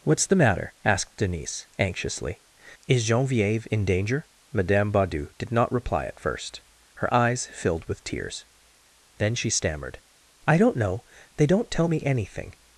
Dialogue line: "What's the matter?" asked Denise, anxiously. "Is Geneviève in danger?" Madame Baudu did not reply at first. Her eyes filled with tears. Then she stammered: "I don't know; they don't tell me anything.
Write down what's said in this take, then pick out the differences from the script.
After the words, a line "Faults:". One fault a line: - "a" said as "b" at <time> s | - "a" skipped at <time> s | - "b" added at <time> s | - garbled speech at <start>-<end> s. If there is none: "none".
"What's the matter?" asked Denise, anxiously. "Is Geneviève in danger?" Madame Baudu did not reply at first. Her eyes filled with tears. Then she stammered: "I don't know; they don't tell me anything.
Faults:
none